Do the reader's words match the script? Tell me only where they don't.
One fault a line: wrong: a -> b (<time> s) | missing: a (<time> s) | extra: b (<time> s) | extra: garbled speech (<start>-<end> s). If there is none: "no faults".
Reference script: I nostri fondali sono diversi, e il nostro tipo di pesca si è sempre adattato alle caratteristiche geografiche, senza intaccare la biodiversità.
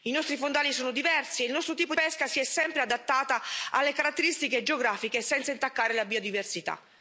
missing: di (1.9 s)